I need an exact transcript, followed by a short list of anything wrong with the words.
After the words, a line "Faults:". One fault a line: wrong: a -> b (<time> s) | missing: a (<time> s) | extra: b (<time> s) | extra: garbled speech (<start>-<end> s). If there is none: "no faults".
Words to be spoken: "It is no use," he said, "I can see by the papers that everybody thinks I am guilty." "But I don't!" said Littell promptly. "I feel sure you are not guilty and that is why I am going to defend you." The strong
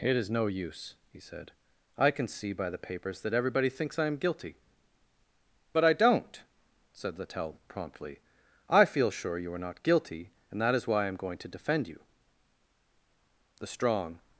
"It is no use," he said, "I can see by the papers that everybody thinks I am guilty." "But I don't!" said Littell promptly. "I feel sure you are not guilty and that is why I am going to defend you." The strong
Faults:
no faults